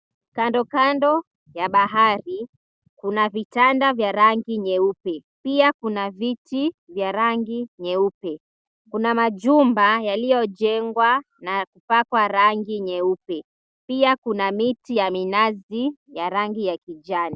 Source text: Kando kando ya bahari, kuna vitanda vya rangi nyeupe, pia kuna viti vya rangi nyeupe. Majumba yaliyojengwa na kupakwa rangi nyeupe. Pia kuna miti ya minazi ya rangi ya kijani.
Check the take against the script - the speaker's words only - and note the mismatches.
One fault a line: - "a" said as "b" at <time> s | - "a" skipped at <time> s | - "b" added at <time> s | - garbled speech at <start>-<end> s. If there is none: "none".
- "Kuna" added at 8.9 s